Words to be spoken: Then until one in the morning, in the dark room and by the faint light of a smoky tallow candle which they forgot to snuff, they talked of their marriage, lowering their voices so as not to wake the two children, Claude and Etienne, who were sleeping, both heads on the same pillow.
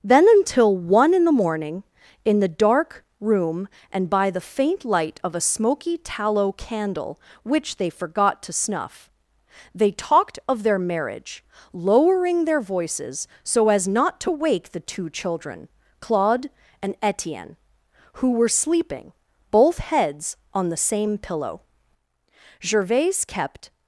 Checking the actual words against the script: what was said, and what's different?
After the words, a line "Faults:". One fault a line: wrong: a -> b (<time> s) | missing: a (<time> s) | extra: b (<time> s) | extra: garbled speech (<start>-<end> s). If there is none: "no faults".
Then until one in the morning, in the dark room and by the faint light of a smoky tallow candle which they forgot to snuff, they talked of their marriage, lowering their voices so as not to wake the two children, Claude and Etienne, who were sleeping, both heads on the same pillow. Gervaise kept
Faults:
extra: Gervaise kept (22.6 s)